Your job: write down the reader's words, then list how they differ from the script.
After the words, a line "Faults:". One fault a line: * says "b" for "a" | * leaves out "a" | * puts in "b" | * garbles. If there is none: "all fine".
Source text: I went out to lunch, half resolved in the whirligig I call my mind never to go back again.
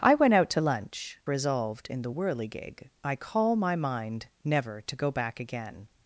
I went out to lunch, resolved in the whirligig I call my mind never to go back again.
Faults:
* leaves out "half"